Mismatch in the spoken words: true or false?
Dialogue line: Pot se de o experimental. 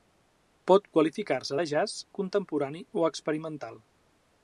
true